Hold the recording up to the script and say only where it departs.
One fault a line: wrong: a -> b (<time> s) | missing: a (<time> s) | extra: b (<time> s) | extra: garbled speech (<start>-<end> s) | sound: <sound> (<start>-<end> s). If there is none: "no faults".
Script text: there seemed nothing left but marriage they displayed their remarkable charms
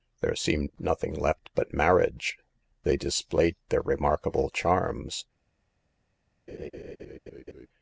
sound: laugh (6.5-7.7 s)